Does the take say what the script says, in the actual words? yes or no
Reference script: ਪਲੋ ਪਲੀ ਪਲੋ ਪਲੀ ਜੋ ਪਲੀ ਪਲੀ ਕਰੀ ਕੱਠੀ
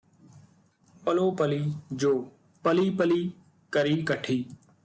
no